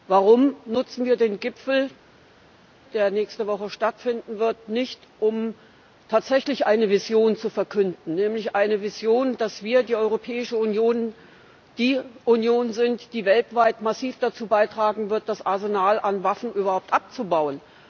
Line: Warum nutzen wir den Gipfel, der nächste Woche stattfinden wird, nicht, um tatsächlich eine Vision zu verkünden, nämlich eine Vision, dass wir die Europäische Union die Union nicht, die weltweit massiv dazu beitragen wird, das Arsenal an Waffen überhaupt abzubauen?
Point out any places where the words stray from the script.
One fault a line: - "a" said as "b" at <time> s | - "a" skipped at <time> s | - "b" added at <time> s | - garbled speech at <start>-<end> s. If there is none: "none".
- "nicht" said as "sind" at 12.7 s